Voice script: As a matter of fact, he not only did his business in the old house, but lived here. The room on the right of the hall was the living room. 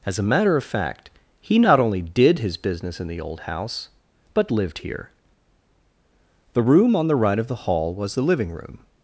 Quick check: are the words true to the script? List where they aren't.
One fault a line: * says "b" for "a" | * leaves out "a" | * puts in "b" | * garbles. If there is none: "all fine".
all fine